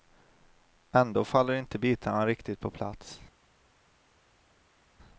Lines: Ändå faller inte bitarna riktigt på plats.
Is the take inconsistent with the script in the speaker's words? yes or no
no